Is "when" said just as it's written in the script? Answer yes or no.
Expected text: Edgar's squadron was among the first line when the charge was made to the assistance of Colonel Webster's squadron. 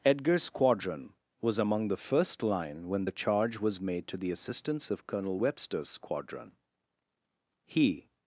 yes